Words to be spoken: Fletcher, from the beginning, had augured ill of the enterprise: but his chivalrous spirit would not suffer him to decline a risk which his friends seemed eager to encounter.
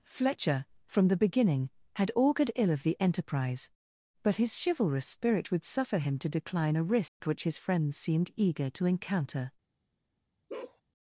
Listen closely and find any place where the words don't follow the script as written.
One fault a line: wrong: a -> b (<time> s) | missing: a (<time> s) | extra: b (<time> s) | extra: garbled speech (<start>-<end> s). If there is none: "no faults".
missing: not (5.6 s)